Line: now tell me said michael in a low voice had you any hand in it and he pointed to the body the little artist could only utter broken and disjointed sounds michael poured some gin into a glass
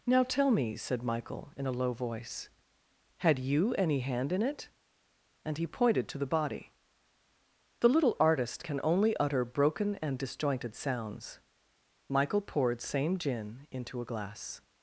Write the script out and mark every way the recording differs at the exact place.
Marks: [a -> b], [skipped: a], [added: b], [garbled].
now tell me said michael in a low voice had you any hand in it and he pointed to the body the little artist [could -> can] only utter broken and disjointed sounds michael poured [some -> same] gin into a glass